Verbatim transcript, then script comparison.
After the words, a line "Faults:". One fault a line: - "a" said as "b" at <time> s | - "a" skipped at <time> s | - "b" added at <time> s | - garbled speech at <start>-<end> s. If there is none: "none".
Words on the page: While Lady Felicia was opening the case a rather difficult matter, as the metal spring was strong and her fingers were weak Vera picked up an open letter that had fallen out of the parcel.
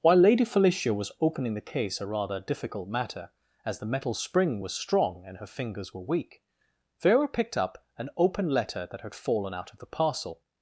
While Lady Felicia was opening the case a rather difficult matter, as the metal spring was strong and her fingers were weak Vera picked up an open letter that had fallen out of the parcel.
Faults:
none